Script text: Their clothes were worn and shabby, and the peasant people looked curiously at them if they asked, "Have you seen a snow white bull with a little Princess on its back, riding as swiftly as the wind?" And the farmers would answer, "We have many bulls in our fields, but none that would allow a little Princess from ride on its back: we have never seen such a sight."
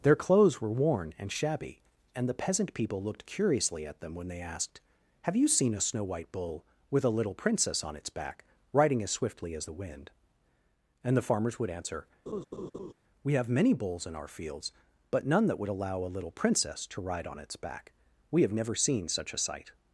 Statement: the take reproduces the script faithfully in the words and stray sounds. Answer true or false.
false